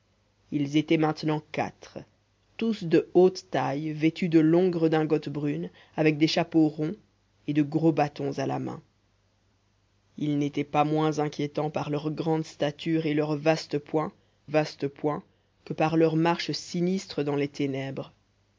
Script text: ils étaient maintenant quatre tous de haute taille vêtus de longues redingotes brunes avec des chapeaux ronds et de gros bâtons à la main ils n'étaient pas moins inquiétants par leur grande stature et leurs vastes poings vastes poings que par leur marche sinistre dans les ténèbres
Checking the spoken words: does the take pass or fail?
pass